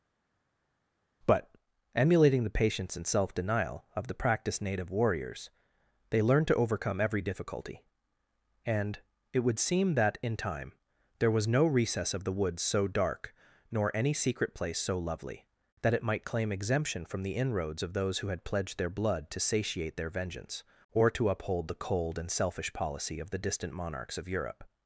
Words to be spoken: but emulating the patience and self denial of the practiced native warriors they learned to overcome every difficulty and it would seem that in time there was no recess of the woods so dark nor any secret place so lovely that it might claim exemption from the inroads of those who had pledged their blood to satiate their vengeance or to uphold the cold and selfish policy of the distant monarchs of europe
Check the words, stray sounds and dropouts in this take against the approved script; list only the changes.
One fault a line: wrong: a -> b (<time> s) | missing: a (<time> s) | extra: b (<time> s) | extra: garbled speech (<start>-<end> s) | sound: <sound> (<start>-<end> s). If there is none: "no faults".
no faults